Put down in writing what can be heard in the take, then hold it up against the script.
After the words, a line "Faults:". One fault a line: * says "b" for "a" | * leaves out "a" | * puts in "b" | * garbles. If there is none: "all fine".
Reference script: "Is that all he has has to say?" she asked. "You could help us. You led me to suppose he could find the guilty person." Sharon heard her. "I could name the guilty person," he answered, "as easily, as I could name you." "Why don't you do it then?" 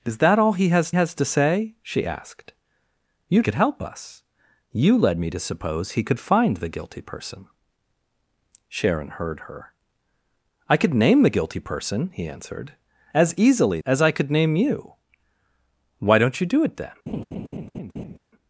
"Is that all he has has to say?" she asked. "You could help us. You led me to suppose he could find the guilty person." Sharon heard her. "I could name the guilty person," he answered, "as easily, as I could name you." "Why don't you do it then?"
Faults:
all fine